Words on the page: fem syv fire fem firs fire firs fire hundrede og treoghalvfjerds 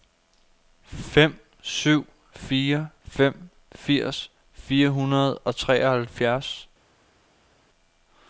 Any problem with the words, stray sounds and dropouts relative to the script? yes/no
yes